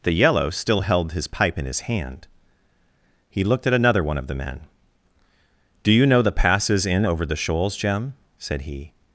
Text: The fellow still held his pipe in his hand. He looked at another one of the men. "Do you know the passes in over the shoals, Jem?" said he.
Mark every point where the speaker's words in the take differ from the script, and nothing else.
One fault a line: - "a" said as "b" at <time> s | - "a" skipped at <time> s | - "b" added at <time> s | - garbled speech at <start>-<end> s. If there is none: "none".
- "fellow" said as "yellow" at 0.1 s